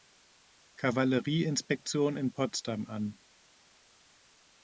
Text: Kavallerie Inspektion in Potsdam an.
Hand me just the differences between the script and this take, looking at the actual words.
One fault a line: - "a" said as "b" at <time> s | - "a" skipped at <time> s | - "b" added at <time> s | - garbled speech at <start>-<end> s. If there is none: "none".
none